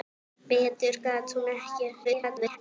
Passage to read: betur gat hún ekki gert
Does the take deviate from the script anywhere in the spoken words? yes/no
yes